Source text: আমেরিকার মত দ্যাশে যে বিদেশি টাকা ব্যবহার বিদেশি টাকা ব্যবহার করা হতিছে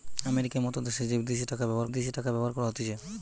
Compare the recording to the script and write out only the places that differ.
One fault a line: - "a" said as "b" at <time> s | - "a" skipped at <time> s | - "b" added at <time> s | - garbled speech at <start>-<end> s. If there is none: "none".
none